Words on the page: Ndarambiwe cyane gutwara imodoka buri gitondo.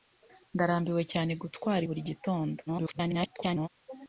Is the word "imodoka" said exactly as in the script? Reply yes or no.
no